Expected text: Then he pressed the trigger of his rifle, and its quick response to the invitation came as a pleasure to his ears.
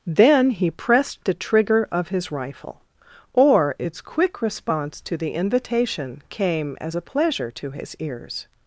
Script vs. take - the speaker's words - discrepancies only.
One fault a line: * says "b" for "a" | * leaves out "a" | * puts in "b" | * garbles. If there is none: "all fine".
* says "or" for "and"